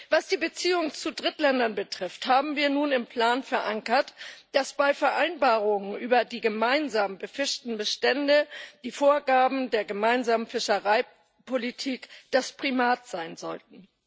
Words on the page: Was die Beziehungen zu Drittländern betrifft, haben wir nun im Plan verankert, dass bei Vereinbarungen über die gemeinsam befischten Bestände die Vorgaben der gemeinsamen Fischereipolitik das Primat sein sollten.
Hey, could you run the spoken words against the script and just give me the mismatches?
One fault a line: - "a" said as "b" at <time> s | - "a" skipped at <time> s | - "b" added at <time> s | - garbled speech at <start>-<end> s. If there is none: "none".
none